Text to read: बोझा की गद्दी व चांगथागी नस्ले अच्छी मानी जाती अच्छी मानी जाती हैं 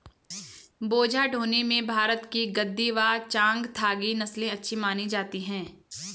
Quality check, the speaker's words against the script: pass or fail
fail